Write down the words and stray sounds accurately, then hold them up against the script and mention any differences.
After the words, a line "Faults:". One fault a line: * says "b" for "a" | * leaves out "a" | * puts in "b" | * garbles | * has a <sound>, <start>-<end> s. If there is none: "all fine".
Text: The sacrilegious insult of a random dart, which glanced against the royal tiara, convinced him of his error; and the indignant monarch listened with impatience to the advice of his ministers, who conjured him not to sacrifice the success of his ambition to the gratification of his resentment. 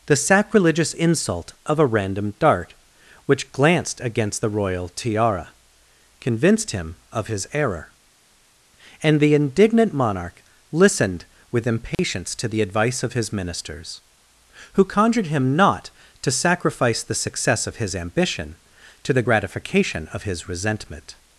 The sacrilegious insult of a random dart, which glanced against the royal tiara, convinced him of his error; and the indignant monarch listened with impatience to the advice of his ministers, who conjured him not to sacrifice the success of his ambition to the gratification of his resentment.
Faults:
* has a dropout, 11.9-12.0 s